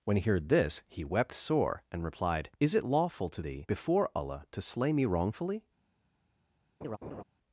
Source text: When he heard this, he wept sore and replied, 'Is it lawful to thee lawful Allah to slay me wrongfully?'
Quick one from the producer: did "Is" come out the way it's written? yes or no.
yes